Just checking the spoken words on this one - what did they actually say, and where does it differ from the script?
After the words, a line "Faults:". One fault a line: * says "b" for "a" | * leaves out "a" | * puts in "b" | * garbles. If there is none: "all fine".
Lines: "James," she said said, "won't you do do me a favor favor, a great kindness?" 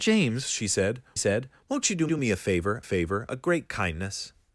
"James," she said said, "won't you do do me a favor favor, a great kindness?"
Faults:
all fine